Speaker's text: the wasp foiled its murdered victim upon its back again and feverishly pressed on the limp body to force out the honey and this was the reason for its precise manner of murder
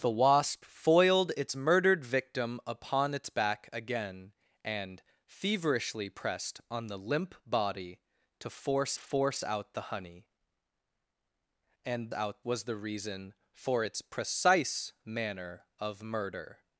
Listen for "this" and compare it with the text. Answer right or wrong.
wrong